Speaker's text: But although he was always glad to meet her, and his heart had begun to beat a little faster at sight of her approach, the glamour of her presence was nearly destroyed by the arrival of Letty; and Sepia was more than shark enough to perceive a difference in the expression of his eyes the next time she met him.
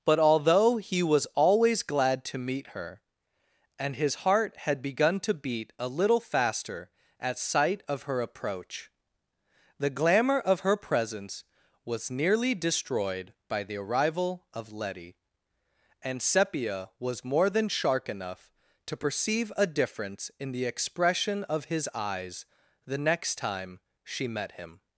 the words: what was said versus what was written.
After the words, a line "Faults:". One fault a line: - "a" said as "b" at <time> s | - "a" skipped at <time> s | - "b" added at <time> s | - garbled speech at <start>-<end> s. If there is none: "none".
But although he was always glad to meet her, and his heart had begun to beat a little faster at sight of her approach, the glamour of her presence was nearly destroyed by the arrival of Letty; and Sepia was more than shark enough to perceive a difference in the expression of his eyes the next time she met him.
Faults:
none